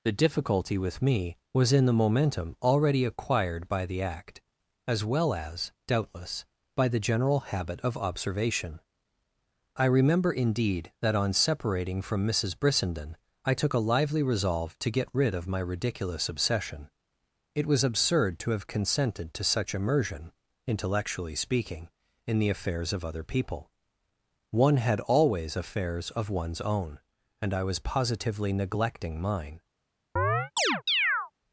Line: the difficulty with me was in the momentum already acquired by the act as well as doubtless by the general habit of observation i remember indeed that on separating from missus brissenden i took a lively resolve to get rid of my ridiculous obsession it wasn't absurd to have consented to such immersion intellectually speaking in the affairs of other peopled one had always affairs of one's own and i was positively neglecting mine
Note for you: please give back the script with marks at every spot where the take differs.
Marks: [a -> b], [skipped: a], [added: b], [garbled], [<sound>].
the difficulty with me was in the momentum already acquired by the act as well as doubtless by the general habit of observation i remember indeed that on separating from missus brissenden i took a lively resolve to get rid of my ridiculous obsession it [wasn't -> was] absurd to have consented to such immersion intellectually speaking in the affairs of other [peopled -> people] one had always affairs of one's own and i was positively neglecting mine [chirp]